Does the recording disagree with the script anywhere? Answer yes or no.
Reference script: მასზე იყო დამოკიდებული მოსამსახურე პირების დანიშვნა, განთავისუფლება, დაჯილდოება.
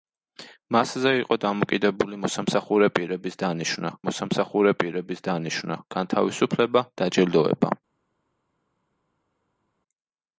yes